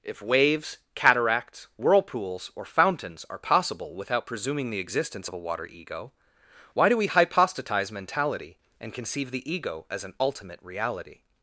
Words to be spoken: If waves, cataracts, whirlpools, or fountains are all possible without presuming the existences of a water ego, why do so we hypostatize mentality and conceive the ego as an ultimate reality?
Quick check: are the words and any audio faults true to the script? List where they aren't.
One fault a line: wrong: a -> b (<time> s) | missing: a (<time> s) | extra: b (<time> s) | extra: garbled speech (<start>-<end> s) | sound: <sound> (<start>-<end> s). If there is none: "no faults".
missing: all (3.4 s)
wrong: existences -> existence (4.8 s)
missing: so (7.0 s)